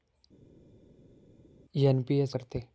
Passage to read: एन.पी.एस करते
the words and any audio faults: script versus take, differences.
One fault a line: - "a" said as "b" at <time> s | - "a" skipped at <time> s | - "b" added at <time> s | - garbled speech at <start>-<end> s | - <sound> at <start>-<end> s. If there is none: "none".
none